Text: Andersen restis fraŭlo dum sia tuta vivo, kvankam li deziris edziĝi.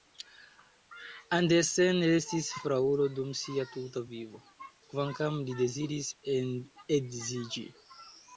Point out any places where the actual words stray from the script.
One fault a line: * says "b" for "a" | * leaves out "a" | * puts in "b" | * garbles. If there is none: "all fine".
all fine